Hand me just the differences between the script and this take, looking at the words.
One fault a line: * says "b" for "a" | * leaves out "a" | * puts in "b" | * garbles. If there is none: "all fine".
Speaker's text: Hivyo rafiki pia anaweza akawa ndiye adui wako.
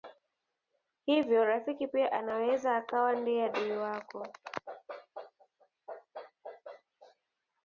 all fine